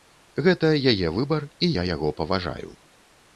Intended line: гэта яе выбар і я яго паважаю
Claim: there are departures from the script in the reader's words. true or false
false